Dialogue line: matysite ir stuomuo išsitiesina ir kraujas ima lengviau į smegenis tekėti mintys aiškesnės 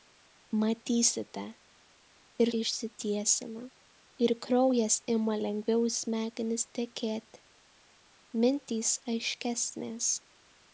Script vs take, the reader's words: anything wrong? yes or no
yes